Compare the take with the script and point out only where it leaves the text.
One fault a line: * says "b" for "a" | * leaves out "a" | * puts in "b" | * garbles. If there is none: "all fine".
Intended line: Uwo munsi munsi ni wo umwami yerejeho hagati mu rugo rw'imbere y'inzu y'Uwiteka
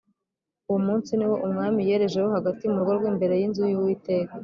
* leaves out "munsi"